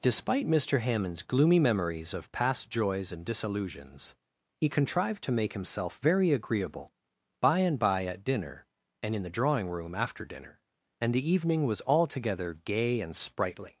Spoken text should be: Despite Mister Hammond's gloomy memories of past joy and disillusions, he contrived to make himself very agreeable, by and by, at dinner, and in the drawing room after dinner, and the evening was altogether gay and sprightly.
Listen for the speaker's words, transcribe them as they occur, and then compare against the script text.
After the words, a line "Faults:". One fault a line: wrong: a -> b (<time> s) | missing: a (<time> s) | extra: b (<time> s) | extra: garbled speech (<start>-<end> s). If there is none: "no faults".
Despite Mister Hammond's gloomy memories of past joys and disillusions, he contrived to make himself very agreeable, by and by, at dinner, and in the drawing room after dinner, and the evening was altogether gay and sprightly.
Faults:
wrong: joy -> joys (2.7 s)